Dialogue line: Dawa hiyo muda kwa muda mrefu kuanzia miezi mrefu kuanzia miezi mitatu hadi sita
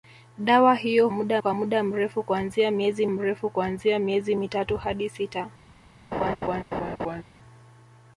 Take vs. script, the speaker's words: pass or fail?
pass